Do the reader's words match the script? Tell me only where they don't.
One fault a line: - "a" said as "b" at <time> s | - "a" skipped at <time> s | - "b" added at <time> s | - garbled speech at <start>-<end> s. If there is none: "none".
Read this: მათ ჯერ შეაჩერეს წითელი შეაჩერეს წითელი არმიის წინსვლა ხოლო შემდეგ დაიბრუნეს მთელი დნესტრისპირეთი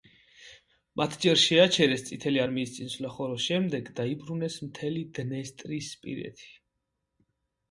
- "შეაჩერეს წითელი" skipped at 2.4 s